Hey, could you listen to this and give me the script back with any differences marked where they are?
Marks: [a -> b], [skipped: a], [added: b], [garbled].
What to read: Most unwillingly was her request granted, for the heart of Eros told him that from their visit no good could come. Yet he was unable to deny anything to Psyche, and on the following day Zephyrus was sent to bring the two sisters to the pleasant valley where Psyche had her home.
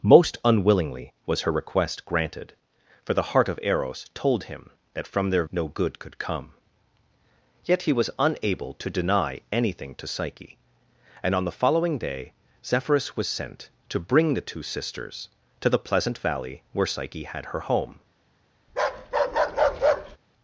Most unwillingly was her request granted, for the heart of Eros told him that from their [skipped: visit] no good could come. Yet he was unable to deny anything to Psyche, and on the following day Zephyrus was sent to bring the two sisters to the pleasant valley where Psyche had her home.